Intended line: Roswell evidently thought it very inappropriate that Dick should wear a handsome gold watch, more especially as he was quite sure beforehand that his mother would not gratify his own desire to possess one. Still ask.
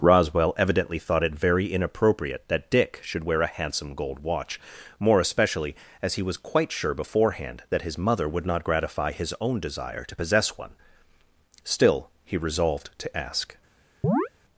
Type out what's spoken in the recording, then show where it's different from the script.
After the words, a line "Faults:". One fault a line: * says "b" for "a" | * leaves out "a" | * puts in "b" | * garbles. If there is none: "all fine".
Roswell evidently thought it very inappropriate that Dick should wear a handsome gold watch, more especially as he was quite sure beforehand that his mother would not gratify his own desire to possess one. Still he resolved to ask.
Faults:
* puts in "he resolved to"